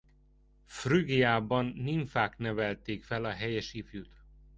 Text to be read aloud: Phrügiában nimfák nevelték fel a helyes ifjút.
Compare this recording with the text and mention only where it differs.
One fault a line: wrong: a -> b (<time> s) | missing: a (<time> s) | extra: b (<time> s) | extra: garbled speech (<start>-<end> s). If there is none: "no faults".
no faults